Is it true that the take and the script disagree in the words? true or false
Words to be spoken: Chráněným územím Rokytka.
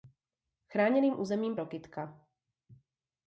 false